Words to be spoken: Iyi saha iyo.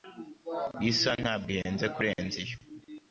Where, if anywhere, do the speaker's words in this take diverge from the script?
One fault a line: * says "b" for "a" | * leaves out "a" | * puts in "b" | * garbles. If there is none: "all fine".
* puts in "ntabwo ihenze kurenza"